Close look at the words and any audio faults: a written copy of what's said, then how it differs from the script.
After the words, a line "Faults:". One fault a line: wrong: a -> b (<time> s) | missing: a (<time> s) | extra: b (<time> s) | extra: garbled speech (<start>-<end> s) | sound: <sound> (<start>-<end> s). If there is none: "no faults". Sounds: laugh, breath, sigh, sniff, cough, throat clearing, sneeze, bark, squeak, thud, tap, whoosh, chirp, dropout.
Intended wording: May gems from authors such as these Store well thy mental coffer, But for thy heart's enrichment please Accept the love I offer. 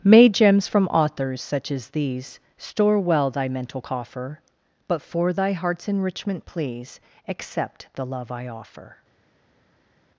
May gems from authors such as these Store well thy mental coffer, But for thy heart's enrichment please Accept the love I offer.
Faults:
no faults